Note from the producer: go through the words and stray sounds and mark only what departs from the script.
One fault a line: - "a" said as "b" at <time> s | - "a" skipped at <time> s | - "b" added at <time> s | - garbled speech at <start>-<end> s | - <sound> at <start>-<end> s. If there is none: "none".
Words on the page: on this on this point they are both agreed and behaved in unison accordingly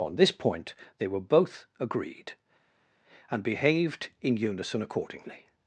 - "on this" skipped at 0.3 s
- "are" said as "were" at 1.1 s